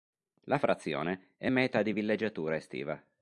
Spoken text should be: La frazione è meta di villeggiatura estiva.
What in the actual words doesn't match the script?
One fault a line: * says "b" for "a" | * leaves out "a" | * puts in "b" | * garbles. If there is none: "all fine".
all fine